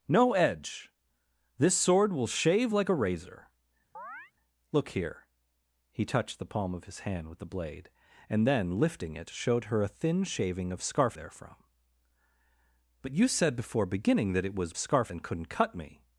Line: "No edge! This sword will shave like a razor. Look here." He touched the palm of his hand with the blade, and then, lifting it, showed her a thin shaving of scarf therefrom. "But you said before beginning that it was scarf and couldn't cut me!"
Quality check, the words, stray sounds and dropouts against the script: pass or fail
fail